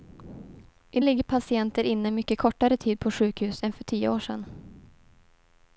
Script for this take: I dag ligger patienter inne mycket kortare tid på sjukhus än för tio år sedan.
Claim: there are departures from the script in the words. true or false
true